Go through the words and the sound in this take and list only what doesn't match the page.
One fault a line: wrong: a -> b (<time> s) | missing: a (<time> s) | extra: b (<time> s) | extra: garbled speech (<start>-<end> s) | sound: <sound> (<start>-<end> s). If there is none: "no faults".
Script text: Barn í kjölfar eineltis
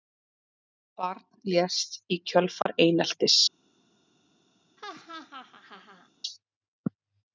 extra: lést (1.5 s)
sound: dropout (2.6-2.7 s)
sound: laugh (4.8-6.1 s)